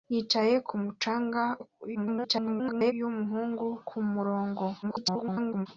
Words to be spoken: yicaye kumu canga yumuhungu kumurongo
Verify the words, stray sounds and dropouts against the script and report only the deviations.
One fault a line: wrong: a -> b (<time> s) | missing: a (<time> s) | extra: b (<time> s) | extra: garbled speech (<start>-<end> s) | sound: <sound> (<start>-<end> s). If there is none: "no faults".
extra: garbled speech (1.9-2.9 s)
extra: garbled speech (4.8-5.7 s)